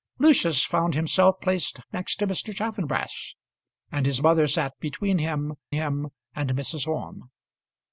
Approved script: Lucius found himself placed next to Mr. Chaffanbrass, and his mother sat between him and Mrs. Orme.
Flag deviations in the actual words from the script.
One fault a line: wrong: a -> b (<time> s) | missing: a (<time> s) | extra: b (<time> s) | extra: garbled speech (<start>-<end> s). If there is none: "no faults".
extra: him (5.7 s)